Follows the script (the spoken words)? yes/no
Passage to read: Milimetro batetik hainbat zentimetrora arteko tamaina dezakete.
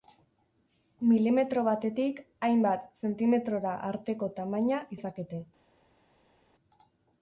yes